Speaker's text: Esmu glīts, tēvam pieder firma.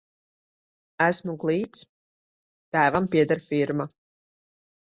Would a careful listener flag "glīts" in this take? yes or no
no